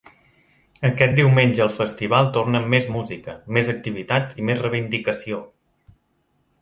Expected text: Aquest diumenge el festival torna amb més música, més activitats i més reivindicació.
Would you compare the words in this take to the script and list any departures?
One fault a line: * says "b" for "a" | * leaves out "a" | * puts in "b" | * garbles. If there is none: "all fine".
all fine